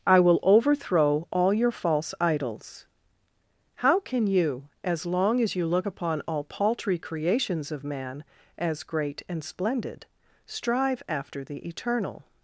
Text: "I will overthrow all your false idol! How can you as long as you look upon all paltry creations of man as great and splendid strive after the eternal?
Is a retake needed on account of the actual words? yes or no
yes